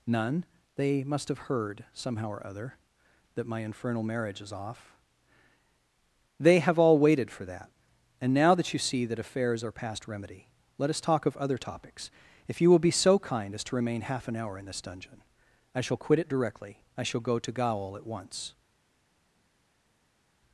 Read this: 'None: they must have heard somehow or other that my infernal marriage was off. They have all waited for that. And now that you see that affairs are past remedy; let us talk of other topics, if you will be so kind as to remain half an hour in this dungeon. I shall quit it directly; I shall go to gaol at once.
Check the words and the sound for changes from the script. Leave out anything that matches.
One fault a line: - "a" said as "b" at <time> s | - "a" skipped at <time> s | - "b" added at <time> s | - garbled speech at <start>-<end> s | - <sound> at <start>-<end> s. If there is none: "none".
- "was" said as "is" at 4.4 s